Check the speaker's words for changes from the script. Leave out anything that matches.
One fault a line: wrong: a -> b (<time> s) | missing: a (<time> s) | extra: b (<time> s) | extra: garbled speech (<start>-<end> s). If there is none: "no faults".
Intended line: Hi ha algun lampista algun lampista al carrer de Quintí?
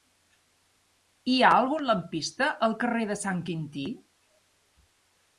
missing: algun lampista (2.5 s)
extra: Sant (3.2 s)